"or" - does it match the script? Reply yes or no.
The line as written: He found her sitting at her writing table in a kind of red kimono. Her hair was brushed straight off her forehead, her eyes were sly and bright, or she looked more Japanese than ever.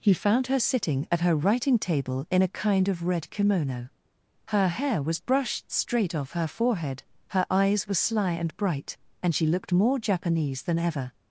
no